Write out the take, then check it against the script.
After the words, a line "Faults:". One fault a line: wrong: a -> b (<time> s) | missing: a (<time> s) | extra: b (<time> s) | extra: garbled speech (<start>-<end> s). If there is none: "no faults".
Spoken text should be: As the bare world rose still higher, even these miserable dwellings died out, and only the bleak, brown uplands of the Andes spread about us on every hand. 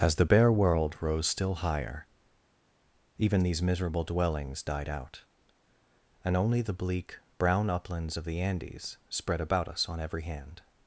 As the bare world rose still higher, even these miserable dwellings died out, and only the bleak, brown uplands of the Andes spread about us on every hand.
Faults:
no faults